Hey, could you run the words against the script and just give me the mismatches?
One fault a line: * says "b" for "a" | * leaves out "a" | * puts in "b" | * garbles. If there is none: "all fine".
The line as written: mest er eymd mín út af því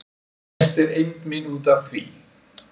all fine